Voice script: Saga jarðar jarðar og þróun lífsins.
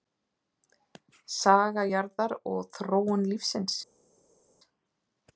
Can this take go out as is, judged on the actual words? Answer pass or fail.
fail